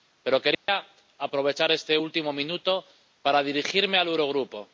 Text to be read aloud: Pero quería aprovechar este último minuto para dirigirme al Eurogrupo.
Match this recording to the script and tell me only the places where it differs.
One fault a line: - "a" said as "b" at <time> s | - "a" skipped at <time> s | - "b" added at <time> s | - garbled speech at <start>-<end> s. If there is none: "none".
none